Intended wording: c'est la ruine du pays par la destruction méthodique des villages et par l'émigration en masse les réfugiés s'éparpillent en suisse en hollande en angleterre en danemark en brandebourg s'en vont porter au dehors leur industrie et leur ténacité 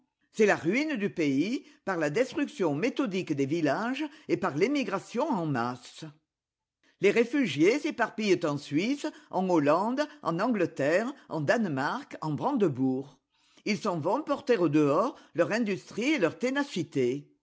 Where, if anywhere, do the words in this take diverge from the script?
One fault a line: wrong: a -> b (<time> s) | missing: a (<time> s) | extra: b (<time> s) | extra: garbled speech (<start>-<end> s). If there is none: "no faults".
extra: ils (13.7 s)